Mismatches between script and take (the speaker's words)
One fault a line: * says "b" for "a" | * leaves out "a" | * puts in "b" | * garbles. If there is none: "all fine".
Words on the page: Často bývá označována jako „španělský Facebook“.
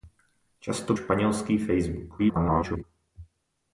* leaves out "bývá označována jako"
* garbles